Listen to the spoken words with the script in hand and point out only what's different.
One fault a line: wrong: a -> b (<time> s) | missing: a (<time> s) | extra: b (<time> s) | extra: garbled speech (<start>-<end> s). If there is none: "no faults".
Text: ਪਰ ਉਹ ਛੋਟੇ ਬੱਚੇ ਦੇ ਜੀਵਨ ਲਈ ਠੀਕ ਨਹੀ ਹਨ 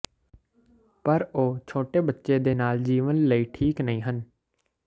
extra: ਨਾਲ (2.5 s)